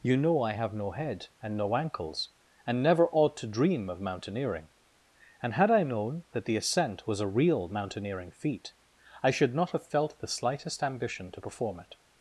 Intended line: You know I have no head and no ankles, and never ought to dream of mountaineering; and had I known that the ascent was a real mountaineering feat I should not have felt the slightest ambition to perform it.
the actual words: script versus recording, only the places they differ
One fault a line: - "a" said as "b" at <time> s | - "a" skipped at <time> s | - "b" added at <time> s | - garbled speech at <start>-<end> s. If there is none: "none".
none